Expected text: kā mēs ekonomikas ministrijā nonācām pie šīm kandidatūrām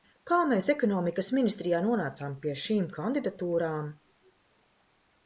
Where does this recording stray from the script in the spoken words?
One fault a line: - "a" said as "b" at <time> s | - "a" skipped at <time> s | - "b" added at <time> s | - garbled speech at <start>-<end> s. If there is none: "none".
none